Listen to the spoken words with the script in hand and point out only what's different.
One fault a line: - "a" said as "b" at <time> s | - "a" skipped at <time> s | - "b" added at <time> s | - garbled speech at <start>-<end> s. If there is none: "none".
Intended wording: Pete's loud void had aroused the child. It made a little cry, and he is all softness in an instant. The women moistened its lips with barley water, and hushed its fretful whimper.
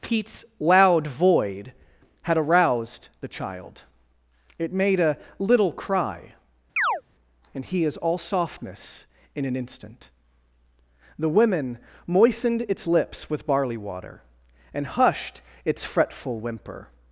none